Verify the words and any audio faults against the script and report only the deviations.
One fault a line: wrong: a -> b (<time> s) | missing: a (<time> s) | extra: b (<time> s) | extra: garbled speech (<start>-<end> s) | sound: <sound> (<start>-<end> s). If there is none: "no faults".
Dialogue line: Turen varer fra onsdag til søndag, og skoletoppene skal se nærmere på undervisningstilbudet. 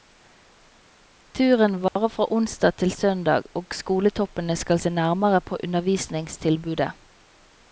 sound: dropout (1.9-2.0 s)